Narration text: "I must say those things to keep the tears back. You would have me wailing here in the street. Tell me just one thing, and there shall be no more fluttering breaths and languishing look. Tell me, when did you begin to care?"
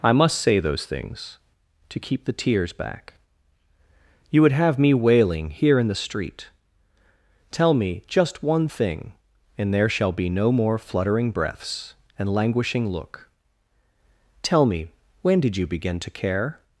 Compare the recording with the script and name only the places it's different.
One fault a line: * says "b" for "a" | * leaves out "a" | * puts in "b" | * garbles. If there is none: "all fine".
all fine